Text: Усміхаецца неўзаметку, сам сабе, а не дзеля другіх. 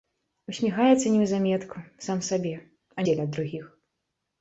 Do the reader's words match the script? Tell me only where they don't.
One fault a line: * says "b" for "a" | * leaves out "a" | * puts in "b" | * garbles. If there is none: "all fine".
* leaves out "не"